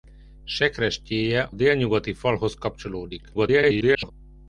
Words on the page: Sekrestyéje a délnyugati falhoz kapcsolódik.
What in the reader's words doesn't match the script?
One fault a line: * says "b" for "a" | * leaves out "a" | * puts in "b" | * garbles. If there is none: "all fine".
* leaves out "a"
* garbles